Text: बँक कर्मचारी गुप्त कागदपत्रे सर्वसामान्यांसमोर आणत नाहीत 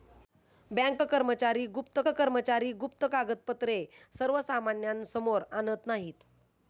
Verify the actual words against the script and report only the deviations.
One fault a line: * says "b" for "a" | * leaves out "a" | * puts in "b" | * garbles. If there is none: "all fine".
* puts in "कर्मचारी गुप्त"